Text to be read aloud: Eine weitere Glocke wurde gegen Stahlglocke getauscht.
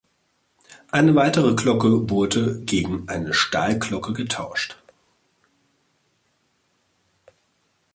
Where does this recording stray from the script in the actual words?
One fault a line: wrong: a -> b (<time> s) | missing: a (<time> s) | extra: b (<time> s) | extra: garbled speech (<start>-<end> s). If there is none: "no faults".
extra: eine (3.1 s)